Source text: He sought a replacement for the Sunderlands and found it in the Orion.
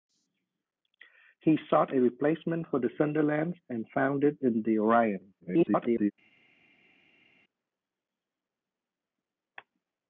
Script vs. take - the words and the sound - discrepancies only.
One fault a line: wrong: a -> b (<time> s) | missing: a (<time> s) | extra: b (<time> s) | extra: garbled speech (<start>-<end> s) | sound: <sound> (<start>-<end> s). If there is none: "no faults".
extra: garbled speech (5.4-6.1 s)